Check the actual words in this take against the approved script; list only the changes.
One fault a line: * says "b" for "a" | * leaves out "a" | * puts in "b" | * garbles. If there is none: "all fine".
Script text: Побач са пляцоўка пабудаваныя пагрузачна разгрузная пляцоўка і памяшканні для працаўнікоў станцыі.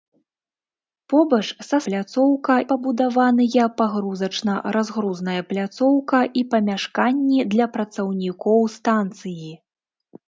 all fine